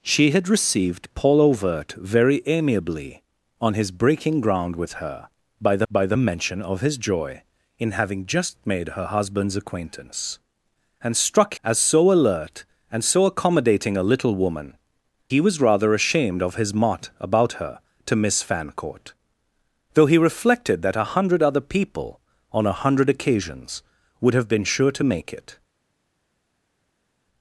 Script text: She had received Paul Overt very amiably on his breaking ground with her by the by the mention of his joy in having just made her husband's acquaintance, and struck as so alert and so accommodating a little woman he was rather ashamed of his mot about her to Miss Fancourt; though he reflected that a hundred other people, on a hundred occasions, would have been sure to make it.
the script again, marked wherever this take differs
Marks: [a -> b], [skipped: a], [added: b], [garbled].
She had received Paul Overt very amiably on his breaking ground with her by the by the mention of his joy in having just made her husband's acquaintance, and struck as so alert and so accommodating a little woman he was rather ashamed of his mot about her to Miss Fancourt; though he reflected that a hundred other people, on a hundred occasions, would have been sure to make it.